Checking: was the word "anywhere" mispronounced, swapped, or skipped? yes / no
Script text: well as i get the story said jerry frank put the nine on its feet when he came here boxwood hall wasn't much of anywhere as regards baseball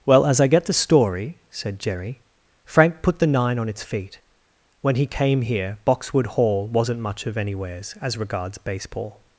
yes